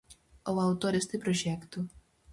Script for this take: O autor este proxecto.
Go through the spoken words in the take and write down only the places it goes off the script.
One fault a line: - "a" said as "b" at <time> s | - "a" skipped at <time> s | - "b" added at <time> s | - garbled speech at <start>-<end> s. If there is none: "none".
none